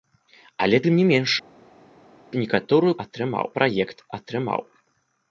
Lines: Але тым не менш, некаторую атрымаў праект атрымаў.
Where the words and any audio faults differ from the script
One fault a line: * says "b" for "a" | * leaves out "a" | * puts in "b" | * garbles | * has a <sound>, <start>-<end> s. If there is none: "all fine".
all fine